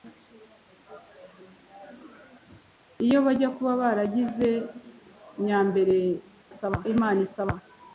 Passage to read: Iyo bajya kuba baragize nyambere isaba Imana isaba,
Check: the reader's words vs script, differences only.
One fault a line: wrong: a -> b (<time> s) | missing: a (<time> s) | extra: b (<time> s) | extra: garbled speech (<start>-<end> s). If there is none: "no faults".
no faults